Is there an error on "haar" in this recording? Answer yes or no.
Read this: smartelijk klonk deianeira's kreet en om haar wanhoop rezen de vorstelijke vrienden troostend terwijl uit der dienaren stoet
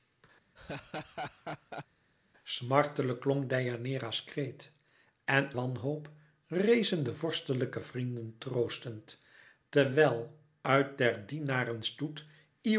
yes